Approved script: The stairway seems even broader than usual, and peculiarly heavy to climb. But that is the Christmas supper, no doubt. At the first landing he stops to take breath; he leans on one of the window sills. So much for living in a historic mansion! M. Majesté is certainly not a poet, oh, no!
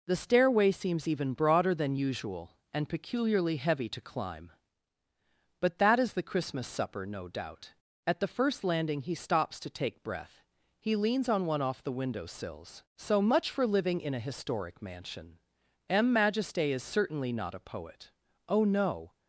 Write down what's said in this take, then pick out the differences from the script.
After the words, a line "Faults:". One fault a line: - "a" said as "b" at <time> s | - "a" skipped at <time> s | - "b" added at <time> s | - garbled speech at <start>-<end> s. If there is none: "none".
The stairway seems even broader than usual, and peculiarly heavy to climb. But that is the Christmas supper, no doubt. At the first landing he stops to take breath; he leans on one off the window sills. So much for living in a historic mansion! M. Majesté is certainly not a poet, oh, no!
Faults:
- "of" said as "off" at 11.6 s